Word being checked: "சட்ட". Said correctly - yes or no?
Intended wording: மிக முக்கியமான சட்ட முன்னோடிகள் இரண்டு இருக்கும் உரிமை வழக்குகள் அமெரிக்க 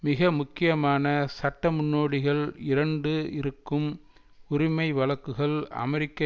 yes